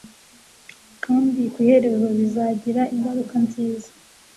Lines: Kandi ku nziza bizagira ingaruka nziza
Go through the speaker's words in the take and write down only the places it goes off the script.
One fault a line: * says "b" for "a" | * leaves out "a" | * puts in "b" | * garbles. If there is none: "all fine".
* says "iherezo" for "nziza"